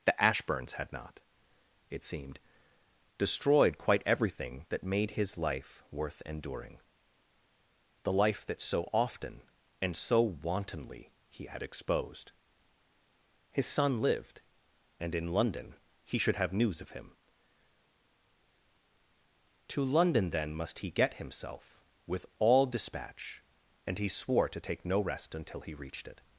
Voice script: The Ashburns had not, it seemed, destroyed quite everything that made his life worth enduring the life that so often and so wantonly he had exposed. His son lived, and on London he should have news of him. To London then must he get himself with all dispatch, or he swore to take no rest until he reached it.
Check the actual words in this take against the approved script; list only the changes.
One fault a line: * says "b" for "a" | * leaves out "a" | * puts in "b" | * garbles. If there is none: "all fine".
* says "in" for "on"
* says "and" for "or"